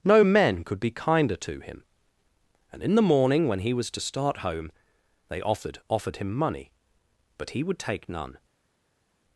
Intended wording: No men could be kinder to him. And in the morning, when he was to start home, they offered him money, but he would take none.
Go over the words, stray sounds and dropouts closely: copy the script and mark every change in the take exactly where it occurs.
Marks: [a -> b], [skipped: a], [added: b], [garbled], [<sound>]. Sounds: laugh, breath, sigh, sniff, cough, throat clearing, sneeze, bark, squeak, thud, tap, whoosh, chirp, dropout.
No men could be kinder to him. And in the morning, when he was to start home, they offered [added: offered] him money, but he would take none.